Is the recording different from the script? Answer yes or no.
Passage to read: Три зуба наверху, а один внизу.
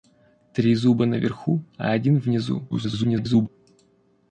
yes